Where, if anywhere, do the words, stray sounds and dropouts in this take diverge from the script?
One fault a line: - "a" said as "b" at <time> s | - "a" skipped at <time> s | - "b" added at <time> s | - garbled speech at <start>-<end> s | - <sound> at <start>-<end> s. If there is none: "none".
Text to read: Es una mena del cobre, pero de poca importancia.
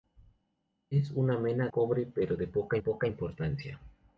- "del" skipped at 1.7 s
- "poca" added at 2.8 s